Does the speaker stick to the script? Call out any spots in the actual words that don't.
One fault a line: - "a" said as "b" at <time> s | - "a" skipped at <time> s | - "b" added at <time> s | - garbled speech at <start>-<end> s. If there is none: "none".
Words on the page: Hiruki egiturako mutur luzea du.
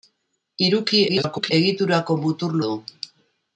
- garbled speech at 1.1-1.5 s
- "luzea" skipped at 2.6 s